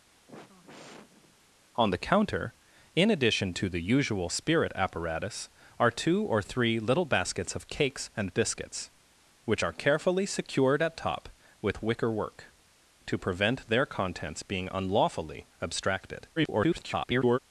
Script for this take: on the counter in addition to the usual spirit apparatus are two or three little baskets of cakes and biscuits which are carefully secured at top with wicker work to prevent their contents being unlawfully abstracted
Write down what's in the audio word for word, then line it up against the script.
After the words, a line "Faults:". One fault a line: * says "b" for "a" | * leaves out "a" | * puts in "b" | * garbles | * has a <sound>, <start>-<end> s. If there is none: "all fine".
on the counter in addition to the usual spirit apparatus are two or three little baskets of cakes and biscuits which are carefully secured at top with wicker work to prevent their contents being unlawfully abstracted [garbled]
Faults:
* has a sigh, 0.1-1.5 s
* garbles